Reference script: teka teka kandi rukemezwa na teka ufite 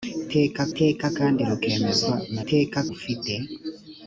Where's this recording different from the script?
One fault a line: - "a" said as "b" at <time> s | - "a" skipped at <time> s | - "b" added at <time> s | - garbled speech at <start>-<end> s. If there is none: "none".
none